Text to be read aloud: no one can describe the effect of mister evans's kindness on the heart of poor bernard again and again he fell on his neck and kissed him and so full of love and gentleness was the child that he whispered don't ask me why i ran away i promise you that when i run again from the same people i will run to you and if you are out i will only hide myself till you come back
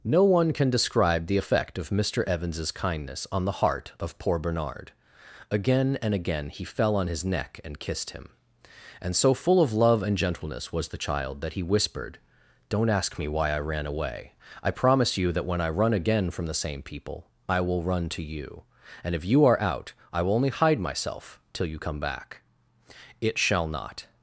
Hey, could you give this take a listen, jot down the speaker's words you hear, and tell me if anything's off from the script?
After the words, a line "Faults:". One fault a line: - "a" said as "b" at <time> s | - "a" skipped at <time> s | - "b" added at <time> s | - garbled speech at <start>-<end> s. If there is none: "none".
no one can describe the effect of mister evans's kindness on the heart of poor bernard again and again he fell on his neck and kissed him and so full of love and gentleness was the child that he whispered don't ask me why i ran away i promise you that when i run again from the same people i will run to you and if you are out i will only hide myself till you come back it shall not
Faults:
- "it shall not" added at 23.2 s